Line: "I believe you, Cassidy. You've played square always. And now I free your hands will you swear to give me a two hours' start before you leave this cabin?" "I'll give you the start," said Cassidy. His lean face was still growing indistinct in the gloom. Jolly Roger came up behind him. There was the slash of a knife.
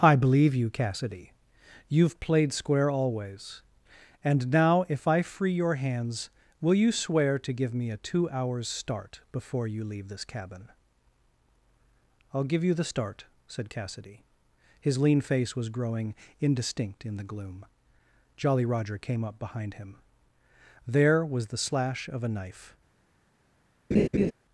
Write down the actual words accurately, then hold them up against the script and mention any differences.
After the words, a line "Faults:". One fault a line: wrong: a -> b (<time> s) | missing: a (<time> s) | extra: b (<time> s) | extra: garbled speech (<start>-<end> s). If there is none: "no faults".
"I believe you, Cassidy. You've played square always. And now if I free your hands will you swear to give me a two hours' start before you leave this cabin?" "I'll give you the start," said Cassidy. His lean face was growing indistinct in the gloom. Jolly Roger came up behind him. There was the slash of a knife.
Faults:
extra: if (4.9 s)
missing: still (15.7 s)